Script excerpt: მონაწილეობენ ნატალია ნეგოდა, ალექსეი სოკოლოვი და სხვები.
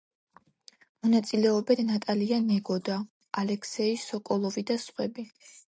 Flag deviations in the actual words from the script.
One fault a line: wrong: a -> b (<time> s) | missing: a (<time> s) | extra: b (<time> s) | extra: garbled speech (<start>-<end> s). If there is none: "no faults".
no faults